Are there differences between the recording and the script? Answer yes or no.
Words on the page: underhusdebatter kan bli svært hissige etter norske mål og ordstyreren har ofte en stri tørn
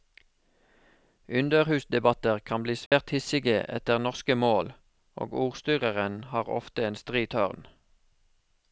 no